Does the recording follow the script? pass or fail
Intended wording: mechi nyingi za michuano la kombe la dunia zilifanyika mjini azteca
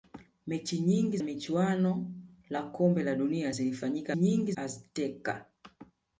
fail